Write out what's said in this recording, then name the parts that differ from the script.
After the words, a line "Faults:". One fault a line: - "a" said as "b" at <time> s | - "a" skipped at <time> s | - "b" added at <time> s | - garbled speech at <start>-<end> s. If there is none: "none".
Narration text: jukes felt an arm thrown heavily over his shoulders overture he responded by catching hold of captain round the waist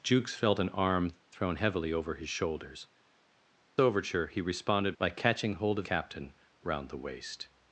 jukes felt an arm thrown heavily over his shoulders overture he responded by catching hold of captain round the waist
Faults:
none